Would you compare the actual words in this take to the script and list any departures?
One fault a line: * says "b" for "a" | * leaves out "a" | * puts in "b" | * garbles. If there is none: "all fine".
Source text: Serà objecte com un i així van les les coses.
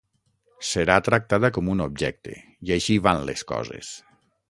* says "tractada" for "objecte"
* puts in "objecte"
* leaves out "les"